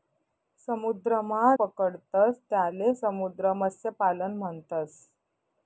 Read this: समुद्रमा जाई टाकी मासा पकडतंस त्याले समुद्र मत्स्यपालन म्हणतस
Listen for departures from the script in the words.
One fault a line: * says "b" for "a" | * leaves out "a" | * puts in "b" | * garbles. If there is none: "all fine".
* leaves out "जाई टाकी मासा"